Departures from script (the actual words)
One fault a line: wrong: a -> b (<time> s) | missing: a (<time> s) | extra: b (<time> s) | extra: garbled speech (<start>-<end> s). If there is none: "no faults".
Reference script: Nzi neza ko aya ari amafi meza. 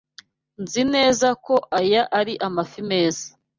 no faults